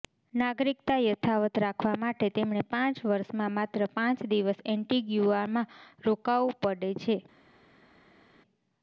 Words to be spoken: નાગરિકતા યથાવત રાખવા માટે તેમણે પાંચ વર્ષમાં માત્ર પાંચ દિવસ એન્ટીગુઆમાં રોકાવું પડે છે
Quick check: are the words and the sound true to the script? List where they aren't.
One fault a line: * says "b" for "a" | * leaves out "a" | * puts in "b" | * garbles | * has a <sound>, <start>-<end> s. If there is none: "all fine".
all fine